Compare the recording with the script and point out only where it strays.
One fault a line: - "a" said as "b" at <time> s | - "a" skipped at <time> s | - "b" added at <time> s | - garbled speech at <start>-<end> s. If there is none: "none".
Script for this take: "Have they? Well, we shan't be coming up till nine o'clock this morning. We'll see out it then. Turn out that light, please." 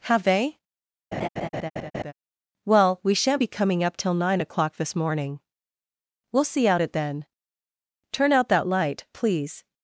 none